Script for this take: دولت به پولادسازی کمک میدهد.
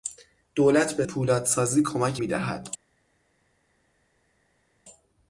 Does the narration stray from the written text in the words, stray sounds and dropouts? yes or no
no